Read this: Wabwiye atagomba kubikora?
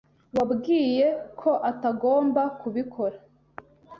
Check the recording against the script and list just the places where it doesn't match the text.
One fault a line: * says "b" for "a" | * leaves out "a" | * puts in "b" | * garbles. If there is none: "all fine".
* puts in "ko"